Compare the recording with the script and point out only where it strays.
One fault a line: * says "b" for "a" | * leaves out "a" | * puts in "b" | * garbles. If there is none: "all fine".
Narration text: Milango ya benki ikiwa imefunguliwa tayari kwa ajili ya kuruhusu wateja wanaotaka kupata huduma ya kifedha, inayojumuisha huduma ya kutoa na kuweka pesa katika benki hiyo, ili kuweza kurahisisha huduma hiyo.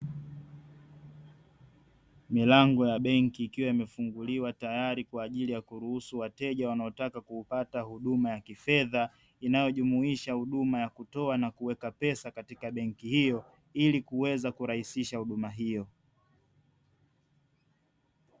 all fine